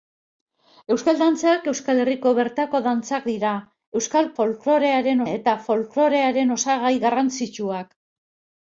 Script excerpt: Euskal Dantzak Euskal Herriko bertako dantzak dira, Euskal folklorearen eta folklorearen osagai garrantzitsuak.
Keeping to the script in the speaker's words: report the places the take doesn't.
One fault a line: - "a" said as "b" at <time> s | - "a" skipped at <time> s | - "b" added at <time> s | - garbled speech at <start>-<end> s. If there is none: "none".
none